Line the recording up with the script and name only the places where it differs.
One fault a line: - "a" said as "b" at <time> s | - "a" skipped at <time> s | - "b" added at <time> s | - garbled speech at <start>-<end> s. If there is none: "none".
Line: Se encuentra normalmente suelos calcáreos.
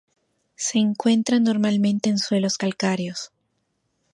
- "en" added at 2.1 s